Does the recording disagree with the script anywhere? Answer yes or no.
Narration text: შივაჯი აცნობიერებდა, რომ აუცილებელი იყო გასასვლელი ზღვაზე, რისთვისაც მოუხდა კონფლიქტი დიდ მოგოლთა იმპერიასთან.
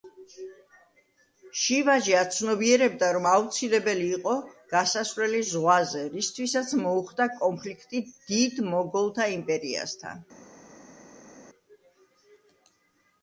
no